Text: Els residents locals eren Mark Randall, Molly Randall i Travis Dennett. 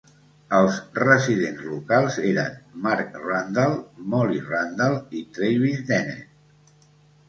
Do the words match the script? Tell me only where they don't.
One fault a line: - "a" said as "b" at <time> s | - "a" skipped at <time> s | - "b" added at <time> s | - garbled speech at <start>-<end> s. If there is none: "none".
none